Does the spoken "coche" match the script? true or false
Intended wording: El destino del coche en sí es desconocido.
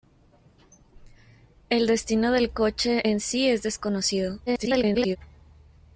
true